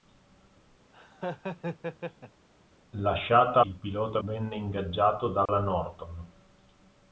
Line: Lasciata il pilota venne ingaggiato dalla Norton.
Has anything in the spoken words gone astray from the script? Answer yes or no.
no